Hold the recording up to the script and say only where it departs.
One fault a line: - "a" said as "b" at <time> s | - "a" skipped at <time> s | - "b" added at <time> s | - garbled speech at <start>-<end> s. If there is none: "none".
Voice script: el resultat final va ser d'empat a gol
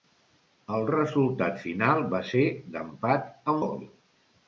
none